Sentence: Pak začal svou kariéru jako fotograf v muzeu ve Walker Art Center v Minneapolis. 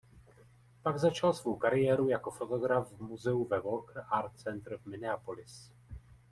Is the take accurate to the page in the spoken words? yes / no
yes